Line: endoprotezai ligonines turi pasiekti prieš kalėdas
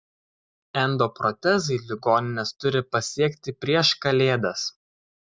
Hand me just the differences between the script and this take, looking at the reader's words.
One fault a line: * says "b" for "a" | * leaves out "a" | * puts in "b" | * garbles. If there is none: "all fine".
all fine